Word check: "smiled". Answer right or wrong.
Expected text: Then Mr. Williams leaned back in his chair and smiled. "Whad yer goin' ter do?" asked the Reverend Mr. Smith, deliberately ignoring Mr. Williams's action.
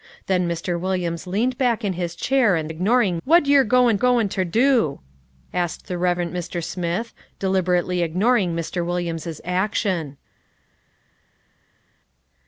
wrong